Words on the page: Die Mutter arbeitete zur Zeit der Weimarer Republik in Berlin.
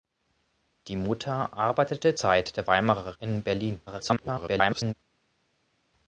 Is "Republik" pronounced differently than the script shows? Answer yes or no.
yes